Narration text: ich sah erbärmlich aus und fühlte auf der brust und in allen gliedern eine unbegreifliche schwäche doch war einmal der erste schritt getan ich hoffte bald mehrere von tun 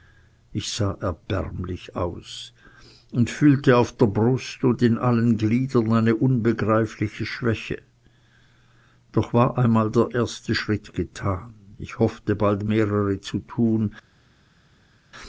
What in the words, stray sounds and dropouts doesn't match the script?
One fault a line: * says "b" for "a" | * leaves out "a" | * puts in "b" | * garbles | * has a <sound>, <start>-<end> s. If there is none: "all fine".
* says "zu" for "von"